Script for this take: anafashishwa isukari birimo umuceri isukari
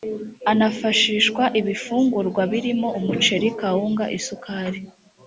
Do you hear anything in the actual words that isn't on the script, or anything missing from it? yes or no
yes